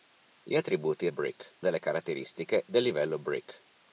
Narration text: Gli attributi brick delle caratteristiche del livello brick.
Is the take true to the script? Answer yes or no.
yes